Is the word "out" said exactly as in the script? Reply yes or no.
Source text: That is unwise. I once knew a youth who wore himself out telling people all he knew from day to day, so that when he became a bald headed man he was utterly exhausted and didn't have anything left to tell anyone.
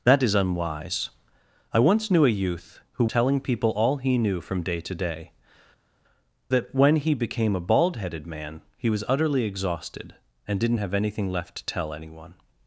no